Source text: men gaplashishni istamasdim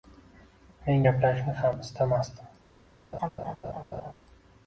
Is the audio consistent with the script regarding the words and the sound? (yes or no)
no